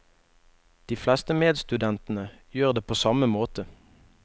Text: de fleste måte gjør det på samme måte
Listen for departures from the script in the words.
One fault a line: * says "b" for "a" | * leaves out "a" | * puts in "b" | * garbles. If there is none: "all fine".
* says "medstudentene" for "måte"